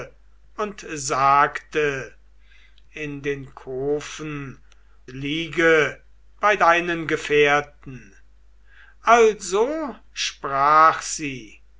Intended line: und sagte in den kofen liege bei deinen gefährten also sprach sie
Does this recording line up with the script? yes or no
yes